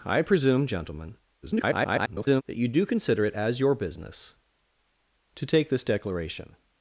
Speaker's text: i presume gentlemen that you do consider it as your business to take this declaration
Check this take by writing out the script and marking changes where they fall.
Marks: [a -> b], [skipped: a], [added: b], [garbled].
i presume gentlemen [garbled] that you do consider it as your business to take this declaration